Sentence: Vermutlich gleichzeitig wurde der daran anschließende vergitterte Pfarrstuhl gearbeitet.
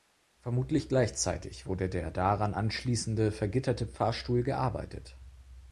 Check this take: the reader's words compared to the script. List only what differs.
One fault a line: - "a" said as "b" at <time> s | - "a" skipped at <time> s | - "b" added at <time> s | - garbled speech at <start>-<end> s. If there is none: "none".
none